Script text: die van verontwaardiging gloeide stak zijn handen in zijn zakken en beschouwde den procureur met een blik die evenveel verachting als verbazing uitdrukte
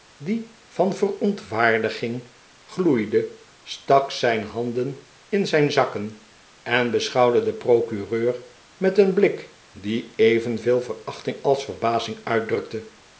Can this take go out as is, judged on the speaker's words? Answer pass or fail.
pass